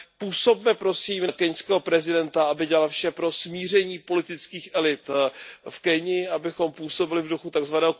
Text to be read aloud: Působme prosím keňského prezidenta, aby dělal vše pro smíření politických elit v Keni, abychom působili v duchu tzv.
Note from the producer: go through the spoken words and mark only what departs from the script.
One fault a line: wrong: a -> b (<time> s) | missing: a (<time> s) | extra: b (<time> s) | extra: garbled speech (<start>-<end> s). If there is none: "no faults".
no faults